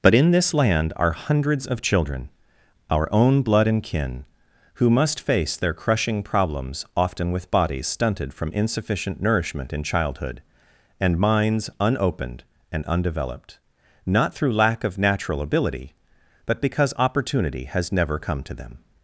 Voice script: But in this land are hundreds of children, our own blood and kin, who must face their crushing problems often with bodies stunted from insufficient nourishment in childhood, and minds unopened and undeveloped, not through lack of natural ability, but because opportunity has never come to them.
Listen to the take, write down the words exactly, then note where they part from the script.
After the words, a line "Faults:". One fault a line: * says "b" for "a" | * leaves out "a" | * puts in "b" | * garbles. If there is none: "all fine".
But in this land are hundreds of children, our own blood and kin, who must face their crushing problems often with bodies stunted from insufficient nourishment in childhood, and minds unopened and undeveloped, not through lack of natural ability, but because opportunity has never come to them.
Faults:
all fine